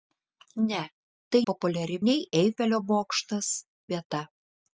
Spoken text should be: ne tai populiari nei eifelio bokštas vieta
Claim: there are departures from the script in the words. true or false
false